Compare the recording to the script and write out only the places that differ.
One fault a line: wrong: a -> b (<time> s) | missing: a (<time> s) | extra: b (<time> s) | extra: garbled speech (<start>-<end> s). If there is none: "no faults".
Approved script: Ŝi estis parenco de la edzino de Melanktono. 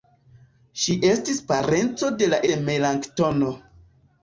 missing: edzino (2.4 s)